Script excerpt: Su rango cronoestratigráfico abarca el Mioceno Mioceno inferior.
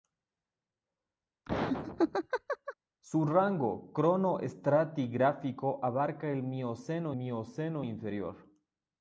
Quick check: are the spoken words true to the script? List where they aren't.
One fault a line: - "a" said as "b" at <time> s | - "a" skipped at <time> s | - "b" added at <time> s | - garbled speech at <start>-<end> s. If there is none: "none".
none